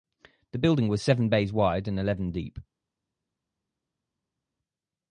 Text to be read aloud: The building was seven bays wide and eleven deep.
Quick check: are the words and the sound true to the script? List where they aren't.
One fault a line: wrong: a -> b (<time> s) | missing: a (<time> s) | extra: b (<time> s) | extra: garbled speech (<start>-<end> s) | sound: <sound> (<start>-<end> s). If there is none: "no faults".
no faults